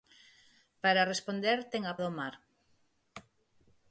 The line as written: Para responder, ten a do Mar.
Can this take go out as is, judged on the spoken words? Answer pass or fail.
pass